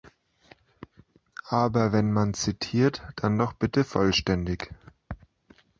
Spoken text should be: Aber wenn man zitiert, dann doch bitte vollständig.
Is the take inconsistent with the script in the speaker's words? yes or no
no